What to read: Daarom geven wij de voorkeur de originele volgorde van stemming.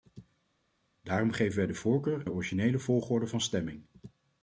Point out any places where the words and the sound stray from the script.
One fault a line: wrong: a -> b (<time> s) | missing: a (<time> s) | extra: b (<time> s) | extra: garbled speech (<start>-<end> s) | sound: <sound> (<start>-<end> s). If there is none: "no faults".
no faults